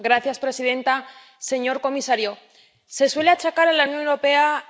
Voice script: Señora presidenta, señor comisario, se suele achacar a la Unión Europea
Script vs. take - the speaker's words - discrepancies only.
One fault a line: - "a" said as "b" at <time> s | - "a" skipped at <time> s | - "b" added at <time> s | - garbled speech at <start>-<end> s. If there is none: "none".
none